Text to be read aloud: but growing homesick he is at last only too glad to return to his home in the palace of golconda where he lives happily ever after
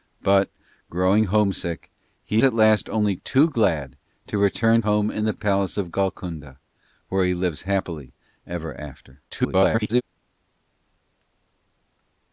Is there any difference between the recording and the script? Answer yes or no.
yes